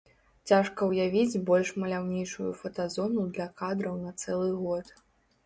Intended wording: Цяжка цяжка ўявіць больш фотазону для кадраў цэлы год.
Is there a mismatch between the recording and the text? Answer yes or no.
yes